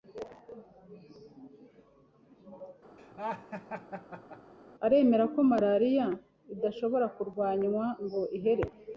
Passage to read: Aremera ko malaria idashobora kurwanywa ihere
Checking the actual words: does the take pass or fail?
fail